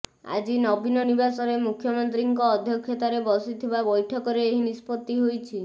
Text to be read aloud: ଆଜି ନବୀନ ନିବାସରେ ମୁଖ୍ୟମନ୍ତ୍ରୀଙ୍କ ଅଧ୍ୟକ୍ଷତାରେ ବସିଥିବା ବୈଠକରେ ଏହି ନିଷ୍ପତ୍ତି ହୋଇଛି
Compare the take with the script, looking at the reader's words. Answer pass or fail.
pass